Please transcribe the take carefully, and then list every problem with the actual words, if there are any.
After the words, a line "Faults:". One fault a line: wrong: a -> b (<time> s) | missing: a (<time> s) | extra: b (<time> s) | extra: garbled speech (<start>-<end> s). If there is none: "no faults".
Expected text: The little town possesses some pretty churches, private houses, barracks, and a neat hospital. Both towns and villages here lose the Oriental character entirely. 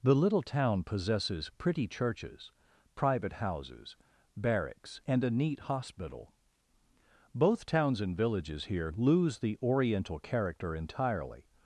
The little town possesses pretty churches, private houses, barracks, and a neat hospital. Both towns and villages here lose the Oriental character entirely.
Faults:
missing: some (1.5 s)